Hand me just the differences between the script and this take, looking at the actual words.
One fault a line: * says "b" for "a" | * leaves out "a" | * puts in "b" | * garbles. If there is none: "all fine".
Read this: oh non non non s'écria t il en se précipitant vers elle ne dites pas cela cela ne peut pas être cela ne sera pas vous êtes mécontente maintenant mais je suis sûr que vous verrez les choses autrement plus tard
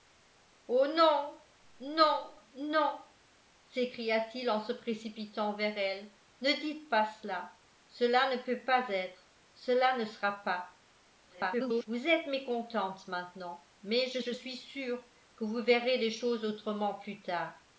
* garbles
* puts in "je"